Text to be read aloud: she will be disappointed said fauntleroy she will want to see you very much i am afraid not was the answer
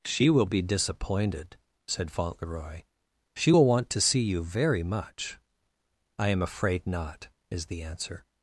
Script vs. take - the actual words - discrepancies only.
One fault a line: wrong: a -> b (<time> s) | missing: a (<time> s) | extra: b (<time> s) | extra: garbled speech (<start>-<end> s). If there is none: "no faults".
wrong: was -> is (7.5 s)